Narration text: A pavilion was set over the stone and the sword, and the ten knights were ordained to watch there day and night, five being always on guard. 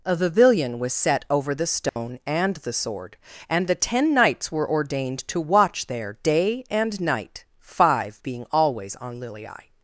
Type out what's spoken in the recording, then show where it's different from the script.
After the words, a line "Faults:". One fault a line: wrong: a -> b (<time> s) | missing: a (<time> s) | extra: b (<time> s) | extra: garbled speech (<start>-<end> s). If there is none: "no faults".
A pavilion was set over the stone and the sword, and the ten knights were ordained to watch there day and night, five being always on lilii.
Faults:
wrong: guard -> lilii (9.2 s)